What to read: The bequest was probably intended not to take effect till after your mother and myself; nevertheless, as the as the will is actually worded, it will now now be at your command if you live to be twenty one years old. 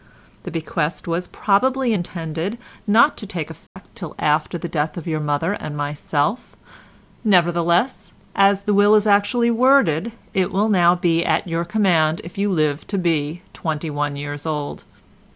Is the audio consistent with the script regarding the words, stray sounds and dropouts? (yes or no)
no